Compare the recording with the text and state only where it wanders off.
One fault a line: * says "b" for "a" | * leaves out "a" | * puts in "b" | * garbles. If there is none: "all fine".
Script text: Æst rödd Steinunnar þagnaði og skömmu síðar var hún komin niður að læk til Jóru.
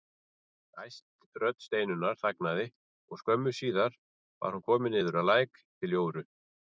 all fine